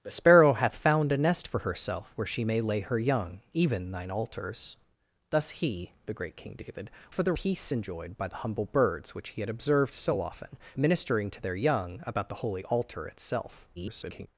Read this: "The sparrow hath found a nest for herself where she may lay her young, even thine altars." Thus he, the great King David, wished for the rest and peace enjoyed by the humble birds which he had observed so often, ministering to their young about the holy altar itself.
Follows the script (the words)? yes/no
no